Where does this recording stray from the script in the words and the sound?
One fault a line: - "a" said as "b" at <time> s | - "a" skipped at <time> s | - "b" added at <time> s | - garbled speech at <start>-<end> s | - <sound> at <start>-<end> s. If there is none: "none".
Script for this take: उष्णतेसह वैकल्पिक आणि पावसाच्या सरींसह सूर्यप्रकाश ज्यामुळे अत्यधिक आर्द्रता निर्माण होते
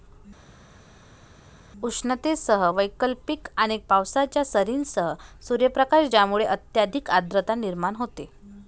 none